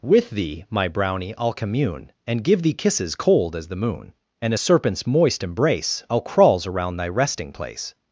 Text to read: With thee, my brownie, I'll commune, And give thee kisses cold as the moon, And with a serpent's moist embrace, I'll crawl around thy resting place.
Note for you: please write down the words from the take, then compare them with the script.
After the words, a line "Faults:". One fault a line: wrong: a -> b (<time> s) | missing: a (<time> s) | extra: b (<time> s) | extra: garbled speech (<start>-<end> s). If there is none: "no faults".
With thee, my brownie, I'll commune, And give thee kisses cold as the moon, And a serpent's moist embrace, I'll crawls around thy resting place.
Faults:
missing: with (4.5 s)
wrong: crawl -> crawls (6.2 s)